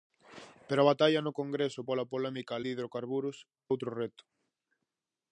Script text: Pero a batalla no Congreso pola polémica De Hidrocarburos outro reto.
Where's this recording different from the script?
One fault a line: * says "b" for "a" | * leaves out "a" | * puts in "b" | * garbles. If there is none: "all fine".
all fine